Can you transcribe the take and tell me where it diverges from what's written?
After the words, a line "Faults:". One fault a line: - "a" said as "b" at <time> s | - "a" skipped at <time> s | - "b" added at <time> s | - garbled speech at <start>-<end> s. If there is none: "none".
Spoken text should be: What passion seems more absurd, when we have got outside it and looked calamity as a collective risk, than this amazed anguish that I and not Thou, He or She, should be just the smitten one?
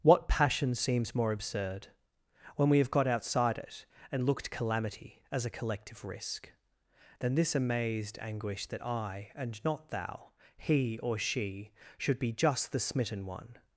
What passion seems more absurd, when we have got outside it and looked calamity as a collective risk, than this amazed anguish that I and not Thou, He or She, should be just the smitten one?
Faults:
none